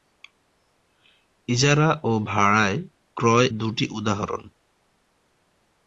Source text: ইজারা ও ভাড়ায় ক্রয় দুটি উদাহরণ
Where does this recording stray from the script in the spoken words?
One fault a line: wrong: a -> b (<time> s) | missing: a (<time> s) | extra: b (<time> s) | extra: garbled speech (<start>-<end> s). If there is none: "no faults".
no faults